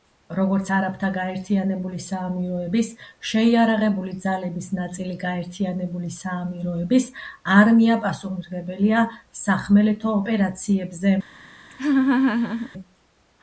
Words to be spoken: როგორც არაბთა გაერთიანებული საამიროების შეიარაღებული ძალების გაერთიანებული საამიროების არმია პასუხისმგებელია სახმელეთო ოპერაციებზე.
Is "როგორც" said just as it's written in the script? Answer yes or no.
yes